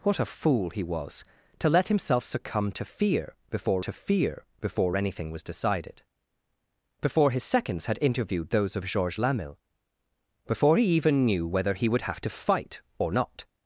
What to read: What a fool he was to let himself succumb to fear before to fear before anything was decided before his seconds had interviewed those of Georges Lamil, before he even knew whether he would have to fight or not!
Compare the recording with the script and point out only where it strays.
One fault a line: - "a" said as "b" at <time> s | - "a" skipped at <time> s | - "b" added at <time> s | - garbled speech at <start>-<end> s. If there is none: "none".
none